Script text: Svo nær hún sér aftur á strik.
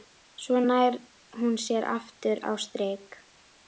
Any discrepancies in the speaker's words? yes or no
no